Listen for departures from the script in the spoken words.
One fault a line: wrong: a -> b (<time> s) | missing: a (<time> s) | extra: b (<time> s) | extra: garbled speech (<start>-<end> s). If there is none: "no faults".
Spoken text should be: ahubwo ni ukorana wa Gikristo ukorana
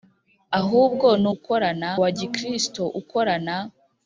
no faults